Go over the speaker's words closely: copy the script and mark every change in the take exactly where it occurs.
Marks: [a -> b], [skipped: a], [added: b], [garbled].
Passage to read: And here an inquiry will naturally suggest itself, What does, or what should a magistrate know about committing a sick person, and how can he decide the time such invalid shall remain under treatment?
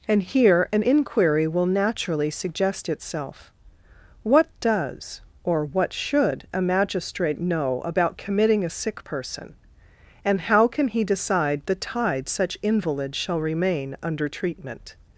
And here an inquiry will naturally suggest itself, What does, or what should a magistrate know about committing a sick person, and how can he decide the [time -> tide] such invalid shall remain under treatment?